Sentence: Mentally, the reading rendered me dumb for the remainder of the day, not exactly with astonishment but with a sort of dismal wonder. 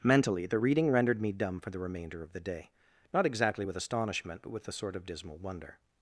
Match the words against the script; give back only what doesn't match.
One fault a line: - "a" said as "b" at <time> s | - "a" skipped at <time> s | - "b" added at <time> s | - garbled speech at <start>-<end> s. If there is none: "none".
none